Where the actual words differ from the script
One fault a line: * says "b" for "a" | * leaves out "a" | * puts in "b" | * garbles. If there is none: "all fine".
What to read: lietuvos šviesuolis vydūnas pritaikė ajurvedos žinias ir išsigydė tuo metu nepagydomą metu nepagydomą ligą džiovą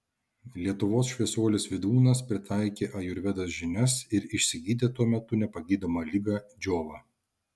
* leaves out "metu nepagydomą"